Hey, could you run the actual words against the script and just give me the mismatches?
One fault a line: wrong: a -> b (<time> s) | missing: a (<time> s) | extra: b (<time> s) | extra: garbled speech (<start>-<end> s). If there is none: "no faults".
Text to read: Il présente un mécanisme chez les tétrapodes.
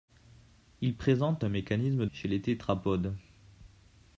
no faults